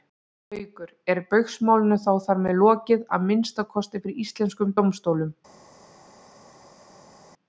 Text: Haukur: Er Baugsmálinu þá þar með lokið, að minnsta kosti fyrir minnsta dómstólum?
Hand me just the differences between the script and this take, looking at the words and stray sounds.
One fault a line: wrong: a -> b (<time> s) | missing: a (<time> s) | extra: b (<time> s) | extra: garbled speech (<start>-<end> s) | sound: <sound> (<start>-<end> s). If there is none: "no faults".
wrong: minnsta -> íslenskum (4.3 s)